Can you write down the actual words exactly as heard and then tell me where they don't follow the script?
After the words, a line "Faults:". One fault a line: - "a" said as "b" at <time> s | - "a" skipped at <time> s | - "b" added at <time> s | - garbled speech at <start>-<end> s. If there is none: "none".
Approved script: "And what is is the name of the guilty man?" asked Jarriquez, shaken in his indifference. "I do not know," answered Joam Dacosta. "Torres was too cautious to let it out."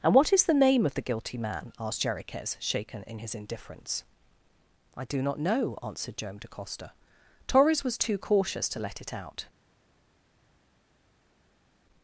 "And what is the name of the guilty man?" asked Jarriquez, shaken in his indifference. "I do not know," answered Joam Dacosta. "Torres was too cautious to let it out."
Faults:
- "is" skipped at 0.5 s